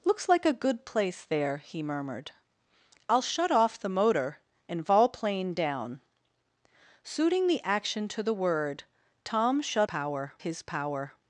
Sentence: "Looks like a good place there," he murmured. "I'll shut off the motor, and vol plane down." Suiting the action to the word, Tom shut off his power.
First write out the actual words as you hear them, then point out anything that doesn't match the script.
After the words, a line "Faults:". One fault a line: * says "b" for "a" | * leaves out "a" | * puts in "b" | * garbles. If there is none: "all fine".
"Looks like a good place there," he murmured. "I'll shut off the motor, and vol plane down." Suiting the action to the word, Tom shut power his power.
Faults:
* says "power" for "off"